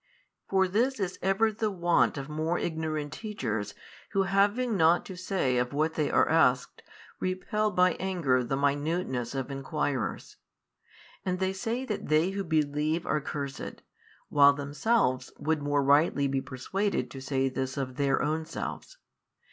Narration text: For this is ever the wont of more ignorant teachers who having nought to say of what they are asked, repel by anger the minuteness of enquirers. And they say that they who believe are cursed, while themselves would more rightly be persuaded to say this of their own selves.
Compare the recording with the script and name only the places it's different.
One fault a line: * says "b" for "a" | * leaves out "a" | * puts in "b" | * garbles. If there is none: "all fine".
all fine